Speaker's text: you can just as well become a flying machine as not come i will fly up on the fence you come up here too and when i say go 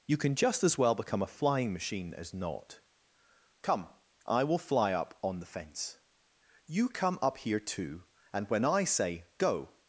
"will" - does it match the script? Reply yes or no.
yes